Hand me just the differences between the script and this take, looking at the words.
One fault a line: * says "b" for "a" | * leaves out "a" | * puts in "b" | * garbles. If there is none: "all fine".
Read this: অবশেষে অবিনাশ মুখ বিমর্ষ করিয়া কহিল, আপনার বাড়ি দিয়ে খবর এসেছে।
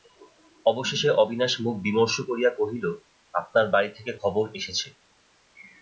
* says "থেকে" for "দিয়ে"